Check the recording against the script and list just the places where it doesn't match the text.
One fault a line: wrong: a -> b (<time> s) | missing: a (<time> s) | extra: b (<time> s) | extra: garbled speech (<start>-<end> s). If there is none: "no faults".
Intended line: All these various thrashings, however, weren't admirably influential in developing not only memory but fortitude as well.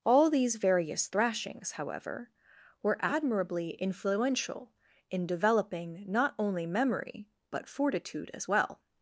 wrong: weren't -> were (2.8 s)